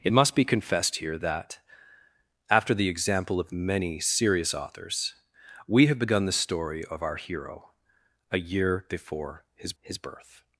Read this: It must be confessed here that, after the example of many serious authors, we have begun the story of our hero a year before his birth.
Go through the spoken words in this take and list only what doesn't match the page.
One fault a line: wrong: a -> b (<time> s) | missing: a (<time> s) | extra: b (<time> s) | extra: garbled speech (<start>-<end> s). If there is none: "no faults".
extra: his (9.8 s)